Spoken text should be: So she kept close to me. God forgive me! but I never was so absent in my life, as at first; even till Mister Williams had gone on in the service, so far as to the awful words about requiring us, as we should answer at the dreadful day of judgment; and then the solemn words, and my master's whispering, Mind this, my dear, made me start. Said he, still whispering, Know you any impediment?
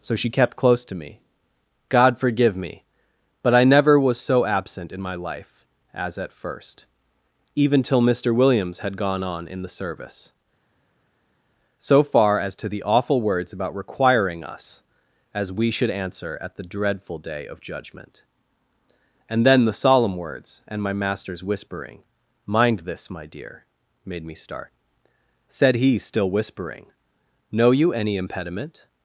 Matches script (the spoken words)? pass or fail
pass